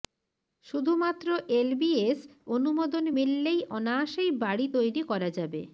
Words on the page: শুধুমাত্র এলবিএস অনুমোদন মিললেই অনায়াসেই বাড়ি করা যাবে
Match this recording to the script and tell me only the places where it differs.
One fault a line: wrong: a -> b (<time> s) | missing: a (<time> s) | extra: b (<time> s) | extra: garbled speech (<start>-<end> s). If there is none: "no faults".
extra: তৈরি (4.7 s)